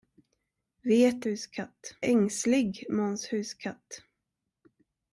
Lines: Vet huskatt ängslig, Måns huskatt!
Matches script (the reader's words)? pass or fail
pass